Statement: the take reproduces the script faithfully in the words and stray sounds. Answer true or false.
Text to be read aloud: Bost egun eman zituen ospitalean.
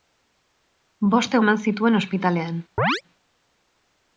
false